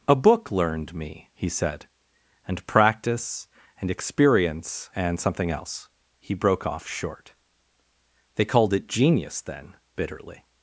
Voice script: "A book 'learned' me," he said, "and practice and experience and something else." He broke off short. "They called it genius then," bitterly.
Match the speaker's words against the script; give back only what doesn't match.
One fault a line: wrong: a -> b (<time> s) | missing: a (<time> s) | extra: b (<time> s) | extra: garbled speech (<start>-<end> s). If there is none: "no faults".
no faults